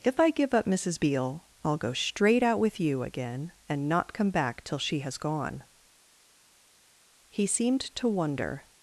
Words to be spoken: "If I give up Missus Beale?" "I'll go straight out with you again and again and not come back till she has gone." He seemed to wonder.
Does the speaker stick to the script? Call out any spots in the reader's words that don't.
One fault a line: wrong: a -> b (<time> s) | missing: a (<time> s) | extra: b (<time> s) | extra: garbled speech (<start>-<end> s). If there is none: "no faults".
missing: again and (3.9 s)